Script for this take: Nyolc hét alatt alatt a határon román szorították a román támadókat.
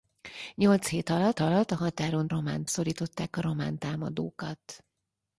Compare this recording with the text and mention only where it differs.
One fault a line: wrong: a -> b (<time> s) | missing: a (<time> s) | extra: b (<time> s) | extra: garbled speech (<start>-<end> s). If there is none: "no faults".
no faults